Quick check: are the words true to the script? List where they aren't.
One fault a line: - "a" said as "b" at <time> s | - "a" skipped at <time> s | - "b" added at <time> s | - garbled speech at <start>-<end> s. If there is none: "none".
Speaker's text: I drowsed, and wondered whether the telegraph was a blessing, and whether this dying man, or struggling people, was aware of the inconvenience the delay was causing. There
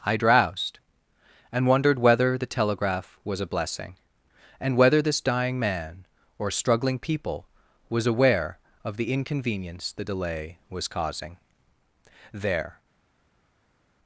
none